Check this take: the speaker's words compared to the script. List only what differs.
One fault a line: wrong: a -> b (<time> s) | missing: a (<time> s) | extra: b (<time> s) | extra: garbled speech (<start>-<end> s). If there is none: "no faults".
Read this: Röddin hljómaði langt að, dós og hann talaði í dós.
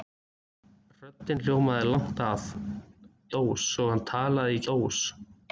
no faults